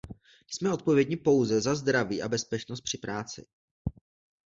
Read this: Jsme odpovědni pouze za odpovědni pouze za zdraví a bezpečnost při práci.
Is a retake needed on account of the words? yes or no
yes